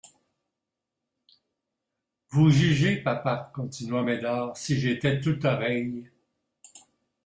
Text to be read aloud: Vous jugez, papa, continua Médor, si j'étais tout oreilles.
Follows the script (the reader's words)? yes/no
yes